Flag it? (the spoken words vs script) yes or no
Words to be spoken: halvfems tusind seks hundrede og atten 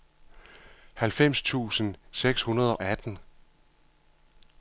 yes